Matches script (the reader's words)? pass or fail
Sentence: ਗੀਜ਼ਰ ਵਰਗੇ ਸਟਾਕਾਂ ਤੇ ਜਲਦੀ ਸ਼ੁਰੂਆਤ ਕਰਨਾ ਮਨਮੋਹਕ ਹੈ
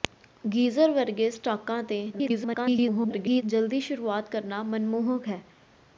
fail